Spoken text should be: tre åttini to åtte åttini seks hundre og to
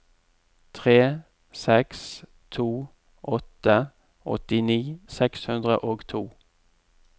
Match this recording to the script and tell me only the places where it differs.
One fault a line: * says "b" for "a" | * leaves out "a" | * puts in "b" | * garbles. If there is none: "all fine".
* says "seks" for "åttini"